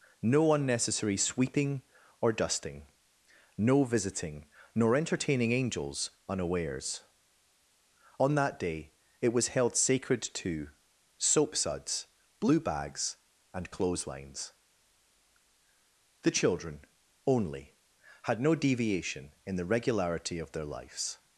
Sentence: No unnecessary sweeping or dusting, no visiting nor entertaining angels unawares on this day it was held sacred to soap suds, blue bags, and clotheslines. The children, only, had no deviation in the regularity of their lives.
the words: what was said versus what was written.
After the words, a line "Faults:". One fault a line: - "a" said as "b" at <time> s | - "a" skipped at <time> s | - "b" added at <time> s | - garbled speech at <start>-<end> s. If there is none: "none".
No unnecessary sweeping or dusting, no visiting nor entertaining angels unawares on that day it was held sacred to soap suds, blue bags, and clotheslines. The children, only, had no deviation in the regularity of their lives.
Faults:
- "this" said as "that" at 8.3 s